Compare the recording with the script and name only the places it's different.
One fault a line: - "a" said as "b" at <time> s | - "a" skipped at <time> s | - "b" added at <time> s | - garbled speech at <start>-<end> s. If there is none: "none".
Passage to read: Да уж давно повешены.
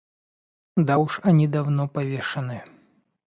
- "они" added at 1.2 s